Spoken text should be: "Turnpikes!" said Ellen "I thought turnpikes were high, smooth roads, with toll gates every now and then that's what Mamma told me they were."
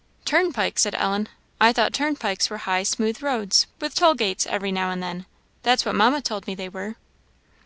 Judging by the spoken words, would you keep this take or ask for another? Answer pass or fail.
pass